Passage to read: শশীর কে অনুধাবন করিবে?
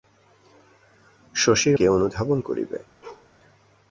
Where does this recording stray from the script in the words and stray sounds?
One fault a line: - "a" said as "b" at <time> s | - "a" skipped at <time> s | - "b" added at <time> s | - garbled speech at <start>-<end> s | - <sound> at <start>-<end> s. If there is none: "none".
- bark at 3.0-3.3 s